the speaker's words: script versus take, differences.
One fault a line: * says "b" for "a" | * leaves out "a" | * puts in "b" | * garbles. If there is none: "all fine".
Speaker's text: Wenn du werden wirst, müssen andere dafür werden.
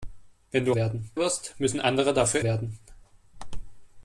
all fine